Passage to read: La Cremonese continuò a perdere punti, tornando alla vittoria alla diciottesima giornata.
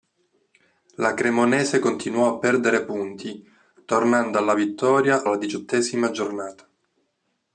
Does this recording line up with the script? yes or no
yes